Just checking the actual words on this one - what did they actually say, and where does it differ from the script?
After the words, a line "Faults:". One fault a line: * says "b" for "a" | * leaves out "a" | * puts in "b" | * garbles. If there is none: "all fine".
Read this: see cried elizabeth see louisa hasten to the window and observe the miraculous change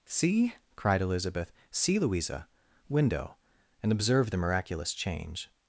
see cried elizabeth see louisa window and observe the miraculous change
Faults:
* leaves out "hasten to the"